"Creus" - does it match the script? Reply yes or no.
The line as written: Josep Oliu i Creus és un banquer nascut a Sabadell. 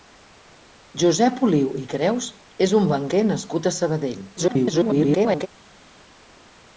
yes